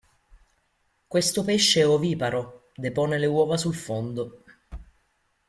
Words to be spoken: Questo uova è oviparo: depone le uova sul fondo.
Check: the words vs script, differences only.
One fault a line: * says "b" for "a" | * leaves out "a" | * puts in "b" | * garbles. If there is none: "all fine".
* says "pesce" for "uova"